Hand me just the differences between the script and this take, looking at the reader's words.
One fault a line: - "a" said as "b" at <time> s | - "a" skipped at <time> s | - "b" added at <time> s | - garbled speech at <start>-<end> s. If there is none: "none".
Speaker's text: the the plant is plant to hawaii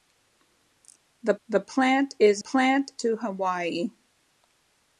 none